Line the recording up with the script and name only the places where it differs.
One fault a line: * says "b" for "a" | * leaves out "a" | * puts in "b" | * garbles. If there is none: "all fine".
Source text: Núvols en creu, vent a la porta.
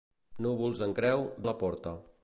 * leaves out "vent"